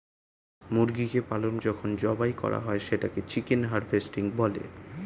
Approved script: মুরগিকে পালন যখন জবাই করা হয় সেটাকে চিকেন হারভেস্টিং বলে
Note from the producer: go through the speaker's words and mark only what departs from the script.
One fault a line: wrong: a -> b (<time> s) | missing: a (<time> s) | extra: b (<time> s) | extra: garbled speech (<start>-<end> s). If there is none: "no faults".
no faults